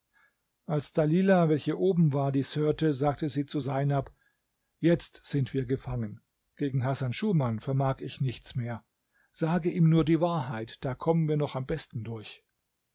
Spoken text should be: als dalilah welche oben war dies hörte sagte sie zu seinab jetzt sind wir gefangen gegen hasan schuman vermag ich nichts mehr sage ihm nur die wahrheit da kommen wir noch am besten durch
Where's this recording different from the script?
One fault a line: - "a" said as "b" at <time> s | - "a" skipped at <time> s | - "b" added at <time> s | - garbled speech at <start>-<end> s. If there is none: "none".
none